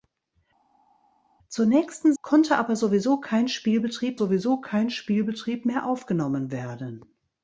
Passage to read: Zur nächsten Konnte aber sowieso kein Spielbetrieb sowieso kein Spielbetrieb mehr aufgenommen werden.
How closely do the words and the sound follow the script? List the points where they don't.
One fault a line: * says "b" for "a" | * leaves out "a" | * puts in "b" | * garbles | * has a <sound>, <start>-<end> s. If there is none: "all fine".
all fine